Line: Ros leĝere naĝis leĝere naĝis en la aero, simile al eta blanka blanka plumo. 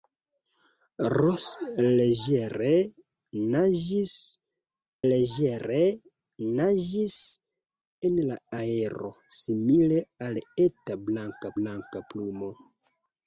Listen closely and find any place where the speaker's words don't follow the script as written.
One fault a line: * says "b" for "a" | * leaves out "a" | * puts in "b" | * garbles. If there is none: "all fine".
all fine